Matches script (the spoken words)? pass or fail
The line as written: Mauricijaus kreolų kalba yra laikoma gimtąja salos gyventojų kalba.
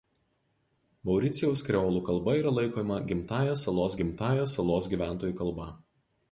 fail